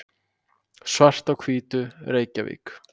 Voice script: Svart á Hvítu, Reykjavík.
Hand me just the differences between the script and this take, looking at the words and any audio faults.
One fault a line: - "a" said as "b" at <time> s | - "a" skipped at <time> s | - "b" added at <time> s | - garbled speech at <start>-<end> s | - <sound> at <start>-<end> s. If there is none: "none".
none